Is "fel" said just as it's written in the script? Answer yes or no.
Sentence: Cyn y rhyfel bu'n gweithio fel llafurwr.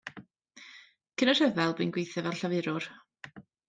yes